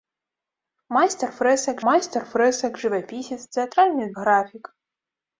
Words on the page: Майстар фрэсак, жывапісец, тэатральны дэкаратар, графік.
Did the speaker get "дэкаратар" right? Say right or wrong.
wrong